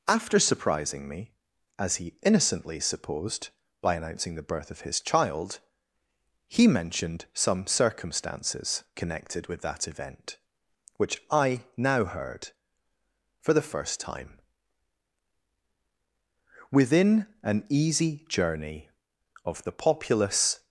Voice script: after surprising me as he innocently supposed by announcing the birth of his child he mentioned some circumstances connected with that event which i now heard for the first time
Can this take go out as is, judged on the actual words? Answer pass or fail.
fail